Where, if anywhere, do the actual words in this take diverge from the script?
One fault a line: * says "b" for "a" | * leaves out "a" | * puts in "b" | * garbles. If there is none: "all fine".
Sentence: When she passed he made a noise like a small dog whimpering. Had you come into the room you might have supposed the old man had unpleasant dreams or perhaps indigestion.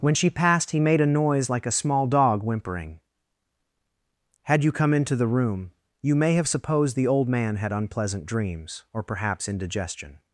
* says "may" for "might"